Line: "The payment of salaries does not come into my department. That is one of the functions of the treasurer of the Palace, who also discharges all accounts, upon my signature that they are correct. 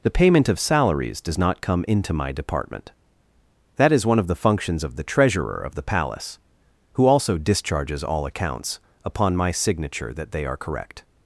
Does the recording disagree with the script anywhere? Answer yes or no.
no